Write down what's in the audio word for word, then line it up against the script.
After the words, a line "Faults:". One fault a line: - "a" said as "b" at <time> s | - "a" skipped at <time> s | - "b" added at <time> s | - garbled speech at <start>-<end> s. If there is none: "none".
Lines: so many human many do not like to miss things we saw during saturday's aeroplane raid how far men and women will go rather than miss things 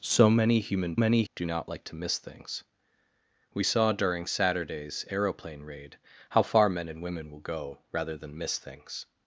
so many human many do not like to miss things we saw during saturday's aeroplane raid how far men and women will go rather than miss things
Faults:
none